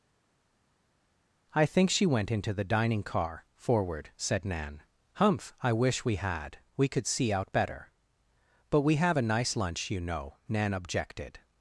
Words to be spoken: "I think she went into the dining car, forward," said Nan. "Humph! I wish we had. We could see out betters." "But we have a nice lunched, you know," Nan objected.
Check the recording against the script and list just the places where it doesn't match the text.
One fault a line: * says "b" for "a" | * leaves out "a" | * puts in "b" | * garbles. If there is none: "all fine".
* says "better" for "betters"
* says "lunch" for "lunched"